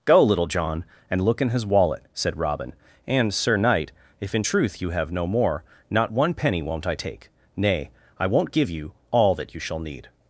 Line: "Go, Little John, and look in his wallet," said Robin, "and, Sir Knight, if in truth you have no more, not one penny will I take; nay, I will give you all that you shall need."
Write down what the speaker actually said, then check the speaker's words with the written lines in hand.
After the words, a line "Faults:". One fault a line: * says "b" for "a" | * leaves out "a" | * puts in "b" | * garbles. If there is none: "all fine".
"Go, Little John, and look in his wallet," said Robin, "and, Sir Knight, if in truth you have no more, not one penny won't I take; nay, I won't give you all that you shall need."
Faults:
* says "won't" for "will"
* says "won't" for "will"